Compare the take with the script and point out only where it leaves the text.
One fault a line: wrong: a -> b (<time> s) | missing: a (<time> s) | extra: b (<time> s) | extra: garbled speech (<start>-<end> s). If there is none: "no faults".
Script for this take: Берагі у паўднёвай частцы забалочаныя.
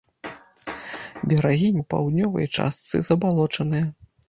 no faults